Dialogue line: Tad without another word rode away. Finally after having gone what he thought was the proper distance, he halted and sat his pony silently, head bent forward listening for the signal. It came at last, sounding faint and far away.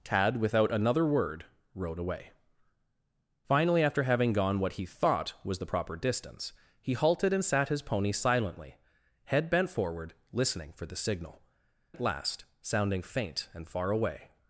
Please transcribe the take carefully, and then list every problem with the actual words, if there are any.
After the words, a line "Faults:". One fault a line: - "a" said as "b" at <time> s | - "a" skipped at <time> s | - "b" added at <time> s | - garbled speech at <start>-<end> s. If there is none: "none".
Tad without another word rode away. Finally after having gone what he thought was the proper distance, he halted and sat his pony silently, head bent forward listening for the signal. At last, sounding faint and far away.
Faults:
- "It came" skipped at 11.4 s